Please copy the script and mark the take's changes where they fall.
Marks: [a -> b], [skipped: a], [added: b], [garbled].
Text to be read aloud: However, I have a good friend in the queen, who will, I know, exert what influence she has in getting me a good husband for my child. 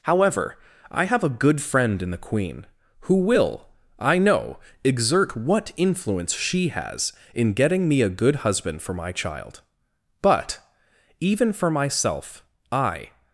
However, I have a good friend in the queen, who will, I know, exert what influence she has in getting me a good husband for my child. [added: But even for myself I]